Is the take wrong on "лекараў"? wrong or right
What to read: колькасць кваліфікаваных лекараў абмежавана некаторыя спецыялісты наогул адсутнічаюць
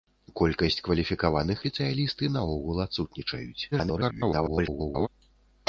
wrong